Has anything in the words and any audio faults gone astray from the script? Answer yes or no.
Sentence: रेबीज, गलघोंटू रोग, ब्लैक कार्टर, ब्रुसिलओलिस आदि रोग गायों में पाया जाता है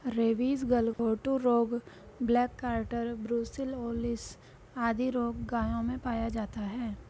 yes